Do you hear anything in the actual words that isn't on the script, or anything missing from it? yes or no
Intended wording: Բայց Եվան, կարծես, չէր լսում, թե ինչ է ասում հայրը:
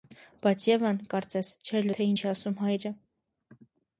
yes